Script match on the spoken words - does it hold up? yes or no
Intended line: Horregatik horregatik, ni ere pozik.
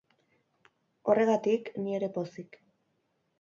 no